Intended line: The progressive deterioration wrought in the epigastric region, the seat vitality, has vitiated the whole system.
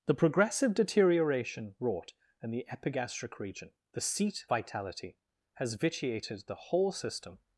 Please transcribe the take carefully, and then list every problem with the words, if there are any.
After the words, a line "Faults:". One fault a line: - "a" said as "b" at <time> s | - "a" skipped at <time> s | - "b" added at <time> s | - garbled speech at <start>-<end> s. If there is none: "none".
The progressive deterioration wrought in the epigastric region, the seat vitality, has vitiated the whole system.
Faults:
none